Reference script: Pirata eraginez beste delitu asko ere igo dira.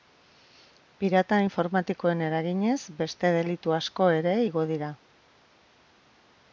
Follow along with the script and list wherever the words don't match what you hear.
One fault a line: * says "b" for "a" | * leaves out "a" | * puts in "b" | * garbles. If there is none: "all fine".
* puts in "informatikoen"